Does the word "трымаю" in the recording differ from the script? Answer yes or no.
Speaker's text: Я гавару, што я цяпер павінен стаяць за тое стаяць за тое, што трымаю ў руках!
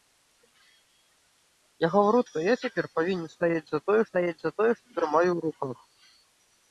no